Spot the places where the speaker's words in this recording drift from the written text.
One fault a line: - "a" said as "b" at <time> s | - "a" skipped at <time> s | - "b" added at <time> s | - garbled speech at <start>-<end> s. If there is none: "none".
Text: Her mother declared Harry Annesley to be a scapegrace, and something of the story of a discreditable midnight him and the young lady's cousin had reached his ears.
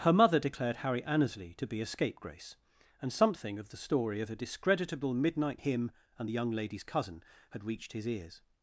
none